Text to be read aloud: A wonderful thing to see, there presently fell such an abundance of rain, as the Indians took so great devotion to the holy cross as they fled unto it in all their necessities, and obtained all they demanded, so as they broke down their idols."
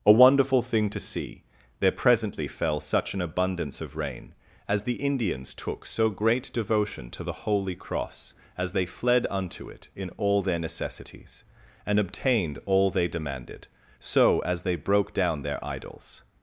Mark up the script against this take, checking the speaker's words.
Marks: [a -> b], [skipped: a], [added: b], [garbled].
A wonderful thing to see, there presently fell such an abundance of rain, as the Indians took so great devotion to the holy cross as they fled unto it in all their necessities, and obtained all they demanded, so as they broke down their idols."